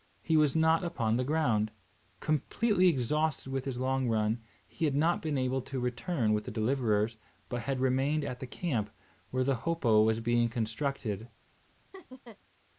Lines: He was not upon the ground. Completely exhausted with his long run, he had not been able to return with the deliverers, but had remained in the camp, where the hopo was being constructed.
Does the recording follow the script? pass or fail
fail